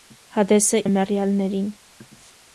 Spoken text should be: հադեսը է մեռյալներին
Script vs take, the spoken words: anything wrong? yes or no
no